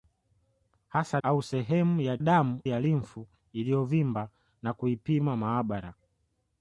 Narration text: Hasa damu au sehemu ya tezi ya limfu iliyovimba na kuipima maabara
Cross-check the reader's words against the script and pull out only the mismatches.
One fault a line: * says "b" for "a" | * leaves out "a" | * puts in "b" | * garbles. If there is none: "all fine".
* leaves out "damu"
* says "damu" for "tezi"